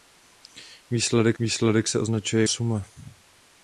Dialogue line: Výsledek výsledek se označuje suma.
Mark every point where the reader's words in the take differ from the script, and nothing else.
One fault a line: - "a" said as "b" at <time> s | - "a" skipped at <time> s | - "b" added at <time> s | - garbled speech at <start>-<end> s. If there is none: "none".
none